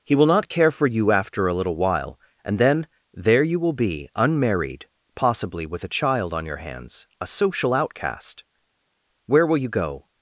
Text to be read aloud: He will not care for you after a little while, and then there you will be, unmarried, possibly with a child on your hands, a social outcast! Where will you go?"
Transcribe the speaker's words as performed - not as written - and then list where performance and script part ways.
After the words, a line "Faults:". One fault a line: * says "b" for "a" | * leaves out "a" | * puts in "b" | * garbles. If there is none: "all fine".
He will not care for you after a little while, and then there you will be, unmarried, possibly with a child on your hands, a social outcast! Where will you go?"
Faults:
all fine